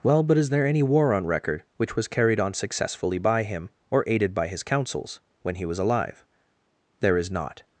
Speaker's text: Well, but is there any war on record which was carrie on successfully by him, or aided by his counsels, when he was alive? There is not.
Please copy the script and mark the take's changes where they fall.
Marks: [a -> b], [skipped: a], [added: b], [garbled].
Well, but is there any war on record which was [carrie -> carried] on successfully by him, or aided by his counsels, when he was alive? There is not.